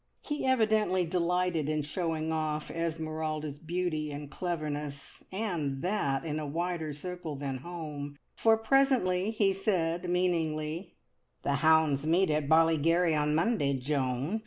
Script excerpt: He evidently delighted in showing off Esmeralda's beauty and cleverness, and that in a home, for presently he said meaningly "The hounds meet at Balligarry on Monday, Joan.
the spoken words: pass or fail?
fail